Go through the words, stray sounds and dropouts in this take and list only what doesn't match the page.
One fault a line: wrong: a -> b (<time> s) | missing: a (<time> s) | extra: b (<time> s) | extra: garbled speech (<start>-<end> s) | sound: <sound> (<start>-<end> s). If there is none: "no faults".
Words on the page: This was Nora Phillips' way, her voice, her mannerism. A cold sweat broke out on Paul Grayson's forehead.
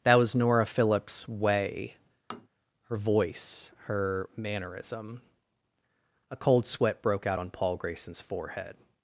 wrong: This -> That (0.0 s)
sound: tap (2.3-2.5 s)